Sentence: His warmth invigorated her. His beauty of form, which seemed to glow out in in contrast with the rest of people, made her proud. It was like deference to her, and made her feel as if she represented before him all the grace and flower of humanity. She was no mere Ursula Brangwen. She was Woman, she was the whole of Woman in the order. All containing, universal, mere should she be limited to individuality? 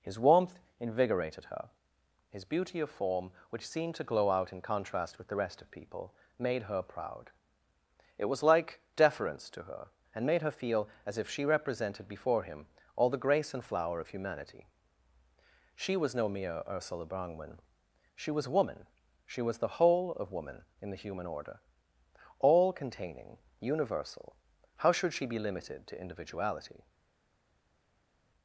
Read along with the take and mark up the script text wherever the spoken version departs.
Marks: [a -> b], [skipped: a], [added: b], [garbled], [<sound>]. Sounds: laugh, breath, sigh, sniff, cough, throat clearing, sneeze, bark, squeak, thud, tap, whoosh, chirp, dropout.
His warmth invigorated her. His beauty of form, which seemed to glow out in [skipped: in] contrast with the rest of people, made her proud. It was like deference to her, and made her feel as if she represented before him all the grace and flower of humanity. She was no mere Ursula Brangwen. She was Woman, she was the whole of Woman in the [added: human] order. All containing, universal, [mere -> how] should she be limited to individuality?